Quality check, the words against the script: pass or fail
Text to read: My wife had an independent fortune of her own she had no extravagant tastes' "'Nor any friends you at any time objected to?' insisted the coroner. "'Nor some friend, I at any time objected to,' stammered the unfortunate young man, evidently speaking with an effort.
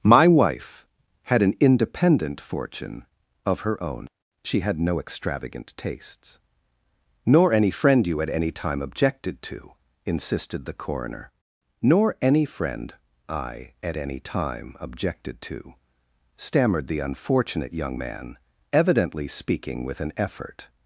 fail